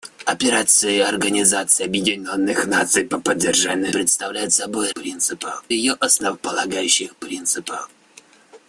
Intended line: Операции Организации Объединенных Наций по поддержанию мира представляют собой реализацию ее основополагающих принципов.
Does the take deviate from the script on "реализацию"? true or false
true